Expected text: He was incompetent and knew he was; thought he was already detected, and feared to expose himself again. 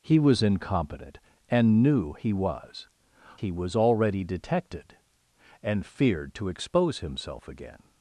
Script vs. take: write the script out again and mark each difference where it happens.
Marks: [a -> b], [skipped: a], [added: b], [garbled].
He was incompetent and knew he was; [skipped: thought] he was already detected, and feared to expose himself again.